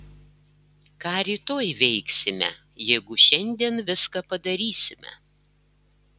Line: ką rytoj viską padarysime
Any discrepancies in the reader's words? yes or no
yes